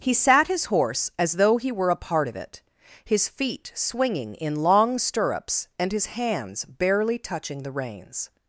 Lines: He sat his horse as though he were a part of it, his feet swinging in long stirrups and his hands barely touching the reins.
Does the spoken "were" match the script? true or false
true